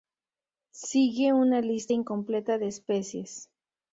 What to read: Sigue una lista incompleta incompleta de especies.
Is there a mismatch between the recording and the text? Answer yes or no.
yes